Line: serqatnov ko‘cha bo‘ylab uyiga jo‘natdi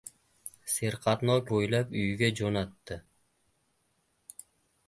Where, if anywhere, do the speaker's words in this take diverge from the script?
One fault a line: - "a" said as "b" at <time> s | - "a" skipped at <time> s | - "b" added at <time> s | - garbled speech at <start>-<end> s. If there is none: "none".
- "ko‘cha" skipped at 1.4 s